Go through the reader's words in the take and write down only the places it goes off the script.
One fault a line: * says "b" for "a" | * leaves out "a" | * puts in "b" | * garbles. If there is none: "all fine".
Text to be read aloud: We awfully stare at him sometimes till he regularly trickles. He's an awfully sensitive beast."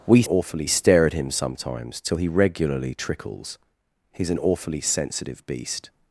all fine